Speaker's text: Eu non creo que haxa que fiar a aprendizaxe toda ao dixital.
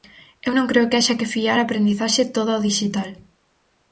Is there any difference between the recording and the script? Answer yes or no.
no